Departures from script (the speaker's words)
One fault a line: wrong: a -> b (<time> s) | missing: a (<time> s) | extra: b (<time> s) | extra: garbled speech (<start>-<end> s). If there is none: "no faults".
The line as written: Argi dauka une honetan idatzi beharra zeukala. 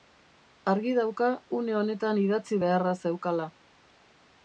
no faults